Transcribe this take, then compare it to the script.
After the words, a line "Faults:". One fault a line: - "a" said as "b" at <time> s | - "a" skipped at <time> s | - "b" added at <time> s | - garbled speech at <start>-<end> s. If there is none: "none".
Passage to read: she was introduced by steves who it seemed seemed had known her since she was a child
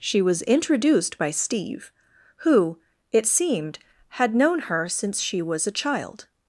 she was introduced by steve who it seemed had known her since she was a child
Faults:
- "steves" said as "steve" at 1.3 s
- "seemed" skipped at 3.8 s